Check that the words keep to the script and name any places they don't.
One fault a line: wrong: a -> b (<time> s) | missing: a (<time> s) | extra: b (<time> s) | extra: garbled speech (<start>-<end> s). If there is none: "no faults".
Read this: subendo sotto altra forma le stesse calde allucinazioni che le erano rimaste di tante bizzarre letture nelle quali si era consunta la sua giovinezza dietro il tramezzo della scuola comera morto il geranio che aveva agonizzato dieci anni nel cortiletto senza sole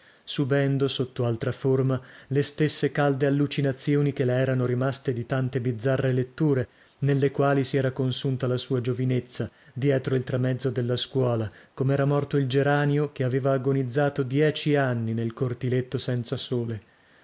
no faults